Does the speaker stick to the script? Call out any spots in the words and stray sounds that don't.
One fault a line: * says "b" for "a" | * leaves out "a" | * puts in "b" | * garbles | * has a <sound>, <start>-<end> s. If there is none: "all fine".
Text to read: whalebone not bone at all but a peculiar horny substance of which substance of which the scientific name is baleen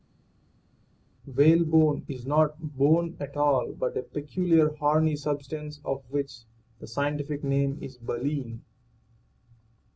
* puts in "is"
* leaves out "substance of which"